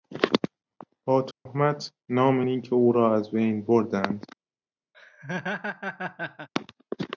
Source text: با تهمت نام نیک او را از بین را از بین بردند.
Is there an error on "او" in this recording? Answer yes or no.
no